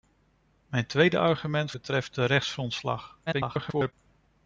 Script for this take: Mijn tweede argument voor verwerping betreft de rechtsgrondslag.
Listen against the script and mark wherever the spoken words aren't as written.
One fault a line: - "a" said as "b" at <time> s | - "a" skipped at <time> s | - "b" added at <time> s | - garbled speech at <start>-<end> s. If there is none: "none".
- "voor verwerping" skipped at 1.7 s
- garbled speech at 3.3-3.9 s